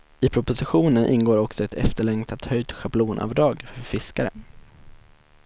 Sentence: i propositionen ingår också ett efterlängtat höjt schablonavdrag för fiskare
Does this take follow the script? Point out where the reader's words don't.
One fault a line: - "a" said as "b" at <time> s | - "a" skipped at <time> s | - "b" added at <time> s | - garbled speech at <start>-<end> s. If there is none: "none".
none